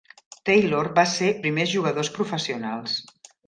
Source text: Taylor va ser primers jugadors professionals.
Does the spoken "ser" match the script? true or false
true